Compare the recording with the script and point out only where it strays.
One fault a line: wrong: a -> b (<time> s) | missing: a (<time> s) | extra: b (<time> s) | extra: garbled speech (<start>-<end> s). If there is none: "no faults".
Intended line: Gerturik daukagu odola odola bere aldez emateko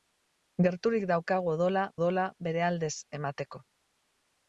no faults